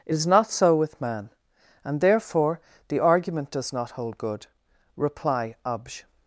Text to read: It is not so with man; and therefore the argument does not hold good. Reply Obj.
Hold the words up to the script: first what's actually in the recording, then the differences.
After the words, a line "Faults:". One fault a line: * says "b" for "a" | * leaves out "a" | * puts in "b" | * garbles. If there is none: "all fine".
It is not so with man; and therefore the argument does not hold good. Reply Obj.
Faults:
all fine